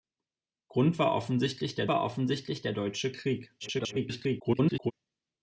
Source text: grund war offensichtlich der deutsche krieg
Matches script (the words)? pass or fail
fail